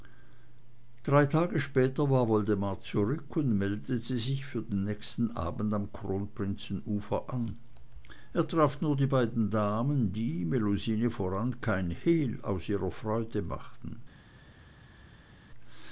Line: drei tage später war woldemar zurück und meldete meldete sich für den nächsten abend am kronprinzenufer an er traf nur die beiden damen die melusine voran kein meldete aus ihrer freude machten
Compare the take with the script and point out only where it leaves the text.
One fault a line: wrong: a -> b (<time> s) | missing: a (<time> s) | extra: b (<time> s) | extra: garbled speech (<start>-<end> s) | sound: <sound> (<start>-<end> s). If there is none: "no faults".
missing: meldete (4.2 s)
wrong: meldete -> hehl (11.9 s)